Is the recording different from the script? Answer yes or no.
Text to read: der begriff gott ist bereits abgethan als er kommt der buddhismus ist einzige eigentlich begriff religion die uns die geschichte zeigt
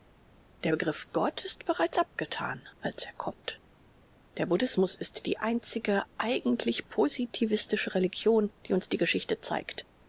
yes